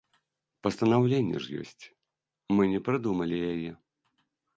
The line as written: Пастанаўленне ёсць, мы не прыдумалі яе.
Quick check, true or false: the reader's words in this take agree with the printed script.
false